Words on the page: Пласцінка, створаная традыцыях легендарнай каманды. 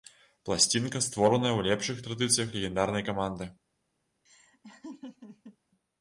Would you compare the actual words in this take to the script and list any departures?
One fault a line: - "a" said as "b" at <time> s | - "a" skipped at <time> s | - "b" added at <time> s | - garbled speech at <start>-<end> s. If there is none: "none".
- "ў лепшых" added at 1.6 s